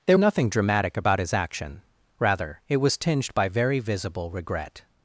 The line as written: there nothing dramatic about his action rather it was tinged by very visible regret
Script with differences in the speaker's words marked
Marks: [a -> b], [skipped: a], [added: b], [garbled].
there nothing dramatic about his action rather it was tinged by very visible regret